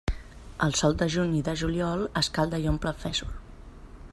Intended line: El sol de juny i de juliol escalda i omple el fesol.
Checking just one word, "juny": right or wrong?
right